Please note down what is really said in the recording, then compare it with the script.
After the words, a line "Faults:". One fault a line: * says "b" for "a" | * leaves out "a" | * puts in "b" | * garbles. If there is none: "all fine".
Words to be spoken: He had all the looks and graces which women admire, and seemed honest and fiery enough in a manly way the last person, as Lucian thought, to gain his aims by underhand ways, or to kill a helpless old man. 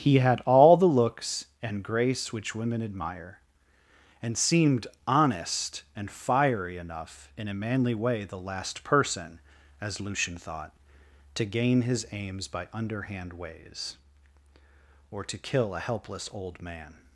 He had all the looks and grace which women admire, and seemed honest and fiery enough in a manly way the last person, as Lucian thought, to gain his aims by underhand ways, or to kill a helpless old man.
Faults:
* says "grace" for "graces"